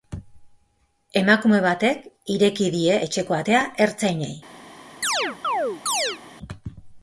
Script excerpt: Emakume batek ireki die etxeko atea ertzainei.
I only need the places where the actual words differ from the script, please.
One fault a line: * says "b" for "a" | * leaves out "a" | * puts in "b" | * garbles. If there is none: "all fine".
all fine